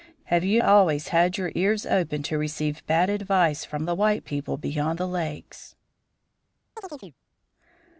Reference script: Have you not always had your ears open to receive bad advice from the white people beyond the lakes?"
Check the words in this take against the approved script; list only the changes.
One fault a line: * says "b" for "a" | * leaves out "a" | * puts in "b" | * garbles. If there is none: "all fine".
* leaves out "not"